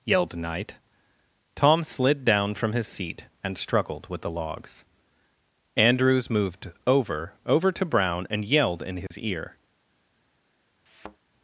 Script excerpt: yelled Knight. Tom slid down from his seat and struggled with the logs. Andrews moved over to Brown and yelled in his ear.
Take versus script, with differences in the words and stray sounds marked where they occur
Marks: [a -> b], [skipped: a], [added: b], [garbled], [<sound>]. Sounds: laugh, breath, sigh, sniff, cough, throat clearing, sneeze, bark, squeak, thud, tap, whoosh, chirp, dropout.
yelled Knight. Tom slid down from his seat and struggled with the logs. Andrews moved over [added: over] to Brown and yelled in his [dropout] ear. [thud]